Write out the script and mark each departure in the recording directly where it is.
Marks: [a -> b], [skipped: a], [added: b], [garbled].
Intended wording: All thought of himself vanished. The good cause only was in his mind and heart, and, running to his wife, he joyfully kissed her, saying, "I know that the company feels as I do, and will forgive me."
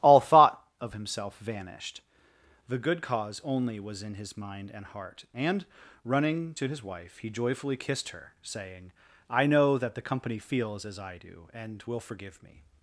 All thought of himself vanished. The good cause only was in his mind and heart, and, running to his wife, he joyfully kissed her, saying, "I know that the company feels as I do, and will forgive me."